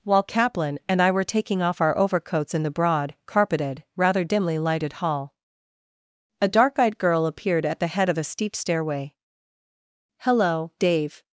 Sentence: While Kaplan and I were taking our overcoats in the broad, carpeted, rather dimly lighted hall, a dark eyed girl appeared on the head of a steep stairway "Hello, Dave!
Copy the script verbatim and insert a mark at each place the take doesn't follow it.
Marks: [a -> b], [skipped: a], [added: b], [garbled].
While Kaplan and I were taking [added: off] our overcoats in the broad, carpeted, rather dimly lighted hall, a dark eyed girl appeared [on -> at] the head of a steep stairway "Hello, Dave!